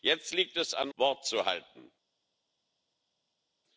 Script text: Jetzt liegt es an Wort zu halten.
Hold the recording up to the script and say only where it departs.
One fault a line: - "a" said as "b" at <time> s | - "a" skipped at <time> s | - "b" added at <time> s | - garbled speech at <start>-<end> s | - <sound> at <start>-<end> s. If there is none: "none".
none